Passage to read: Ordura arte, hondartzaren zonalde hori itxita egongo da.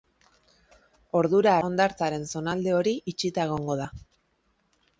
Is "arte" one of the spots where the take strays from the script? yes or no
yes